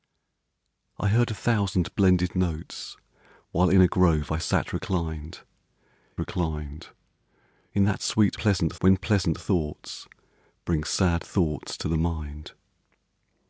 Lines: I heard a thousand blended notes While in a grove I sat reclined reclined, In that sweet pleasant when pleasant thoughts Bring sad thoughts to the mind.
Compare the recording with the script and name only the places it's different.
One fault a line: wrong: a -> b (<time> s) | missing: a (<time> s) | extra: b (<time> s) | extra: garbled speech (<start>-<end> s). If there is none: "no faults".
no faults